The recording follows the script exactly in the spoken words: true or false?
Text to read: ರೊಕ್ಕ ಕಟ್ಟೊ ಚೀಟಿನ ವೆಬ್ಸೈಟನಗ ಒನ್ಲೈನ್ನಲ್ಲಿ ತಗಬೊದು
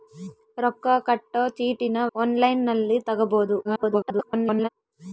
false